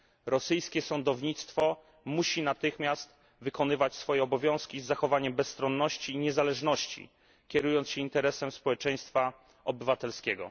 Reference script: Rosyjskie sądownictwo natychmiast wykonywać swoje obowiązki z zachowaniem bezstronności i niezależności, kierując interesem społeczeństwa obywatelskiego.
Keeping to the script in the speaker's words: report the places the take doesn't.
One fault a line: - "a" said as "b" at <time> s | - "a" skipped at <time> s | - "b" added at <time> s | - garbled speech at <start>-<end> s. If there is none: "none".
- "musi" added at 2.0 s
- "się" added at 7.9 s